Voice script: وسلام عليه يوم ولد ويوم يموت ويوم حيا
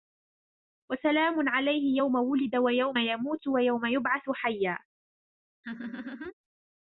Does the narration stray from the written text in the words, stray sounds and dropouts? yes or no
yes